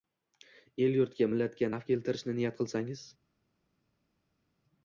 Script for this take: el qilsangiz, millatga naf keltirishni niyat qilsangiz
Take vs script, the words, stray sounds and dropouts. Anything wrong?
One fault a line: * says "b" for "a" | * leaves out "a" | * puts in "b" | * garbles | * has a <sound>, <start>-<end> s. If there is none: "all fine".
* says "yurtga" for "qilsangiz"